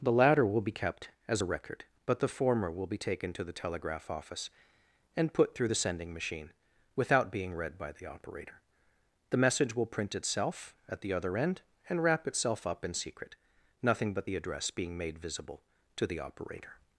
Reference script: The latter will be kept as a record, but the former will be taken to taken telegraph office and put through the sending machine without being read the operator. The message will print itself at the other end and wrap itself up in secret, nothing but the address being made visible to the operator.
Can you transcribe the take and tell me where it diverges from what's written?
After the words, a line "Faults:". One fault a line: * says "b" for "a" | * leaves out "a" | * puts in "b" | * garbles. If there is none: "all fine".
The latter will be kept as a record, but the former will be taken to the telegraph office and put through the sending machine without being read by the operator. The message will print itself at the other end and wrap itself up in secret, nothing but the address being made visible to the operator.
Faults:
* says "the" for "taken"
* puts in "by"